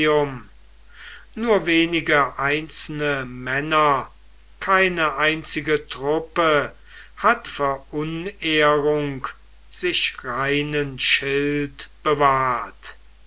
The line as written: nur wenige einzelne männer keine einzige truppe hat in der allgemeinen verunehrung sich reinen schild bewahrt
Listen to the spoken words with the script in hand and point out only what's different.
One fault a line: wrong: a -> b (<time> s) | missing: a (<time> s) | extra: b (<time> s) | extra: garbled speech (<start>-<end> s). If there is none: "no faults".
missing: in der allgemeinen (7.5 s)